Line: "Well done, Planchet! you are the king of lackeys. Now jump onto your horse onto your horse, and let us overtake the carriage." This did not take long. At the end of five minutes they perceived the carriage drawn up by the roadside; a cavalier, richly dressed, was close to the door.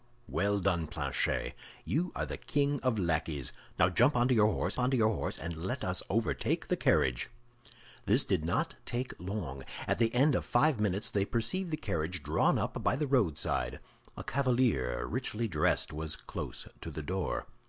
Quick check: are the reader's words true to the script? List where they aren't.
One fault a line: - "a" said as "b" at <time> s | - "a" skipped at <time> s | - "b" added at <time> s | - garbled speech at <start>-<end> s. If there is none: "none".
none